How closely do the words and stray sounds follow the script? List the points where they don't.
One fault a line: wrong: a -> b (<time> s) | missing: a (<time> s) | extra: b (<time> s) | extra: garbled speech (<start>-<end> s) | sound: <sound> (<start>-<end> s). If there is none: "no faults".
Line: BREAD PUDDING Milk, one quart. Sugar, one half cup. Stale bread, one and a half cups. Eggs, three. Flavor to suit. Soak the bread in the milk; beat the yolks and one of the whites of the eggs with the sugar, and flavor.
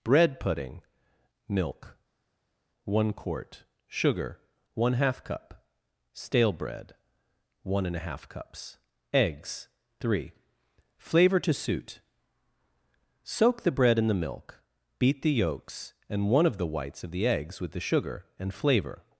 no faults